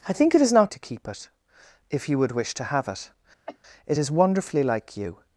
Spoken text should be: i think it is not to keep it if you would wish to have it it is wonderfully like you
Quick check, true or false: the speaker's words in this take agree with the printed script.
true